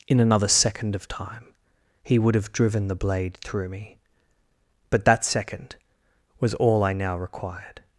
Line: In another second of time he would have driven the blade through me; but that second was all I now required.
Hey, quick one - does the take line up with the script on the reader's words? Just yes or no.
yes